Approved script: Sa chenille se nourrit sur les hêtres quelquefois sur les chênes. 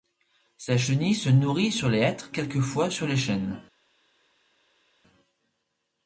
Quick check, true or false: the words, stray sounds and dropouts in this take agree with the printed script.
true